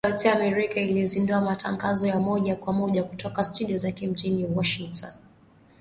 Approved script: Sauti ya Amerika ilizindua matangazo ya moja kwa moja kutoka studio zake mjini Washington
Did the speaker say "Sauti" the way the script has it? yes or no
yes